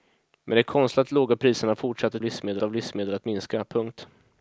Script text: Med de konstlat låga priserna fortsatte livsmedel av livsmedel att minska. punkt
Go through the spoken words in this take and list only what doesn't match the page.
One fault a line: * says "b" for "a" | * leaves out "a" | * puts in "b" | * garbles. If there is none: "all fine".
all fine